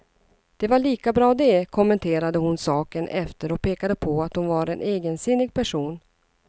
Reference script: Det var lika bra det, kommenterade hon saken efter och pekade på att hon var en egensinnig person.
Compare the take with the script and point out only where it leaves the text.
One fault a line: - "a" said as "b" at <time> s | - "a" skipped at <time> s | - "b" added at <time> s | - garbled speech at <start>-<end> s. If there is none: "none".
none